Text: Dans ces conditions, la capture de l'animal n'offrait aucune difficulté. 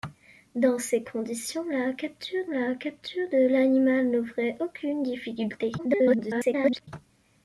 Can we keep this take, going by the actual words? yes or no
no